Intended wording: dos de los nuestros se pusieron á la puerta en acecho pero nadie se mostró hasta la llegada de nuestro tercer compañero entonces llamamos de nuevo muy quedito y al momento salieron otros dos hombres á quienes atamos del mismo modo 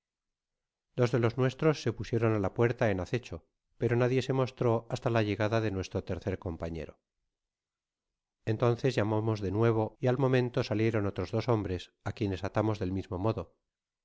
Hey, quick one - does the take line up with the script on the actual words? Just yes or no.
no